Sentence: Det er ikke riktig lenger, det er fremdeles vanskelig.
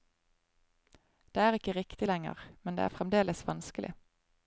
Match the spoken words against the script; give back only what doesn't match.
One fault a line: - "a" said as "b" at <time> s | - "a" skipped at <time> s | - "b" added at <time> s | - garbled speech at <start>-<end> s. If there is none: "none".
- "men" added at 2.6 s